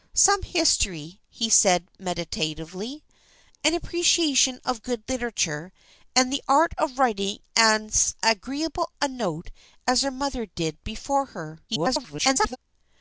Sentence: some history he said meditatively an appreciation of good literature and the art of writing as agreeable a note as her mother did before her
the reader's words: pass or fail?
fail